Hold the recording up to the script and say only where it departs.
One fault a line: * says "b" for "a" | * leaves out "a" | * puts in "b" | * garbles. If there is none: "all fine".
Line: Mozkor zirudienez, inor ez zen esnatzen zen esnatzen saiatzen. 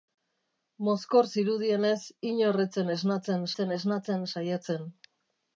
all fine